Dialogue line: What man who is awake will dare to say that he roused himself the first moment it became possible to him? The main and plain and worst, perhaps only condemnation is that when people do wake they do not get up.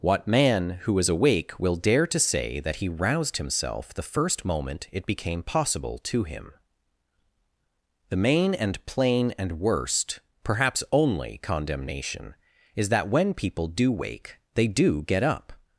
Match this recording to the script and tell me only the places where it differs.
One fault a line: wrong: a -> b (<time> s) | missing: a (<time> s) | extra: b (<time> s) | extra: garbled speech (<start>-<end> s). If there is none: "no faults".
missing: not (15.0 s)